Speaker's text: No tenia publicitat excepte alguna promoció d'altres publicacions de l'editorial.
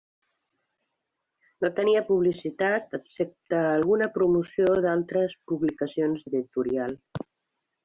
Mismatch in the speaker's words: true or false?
true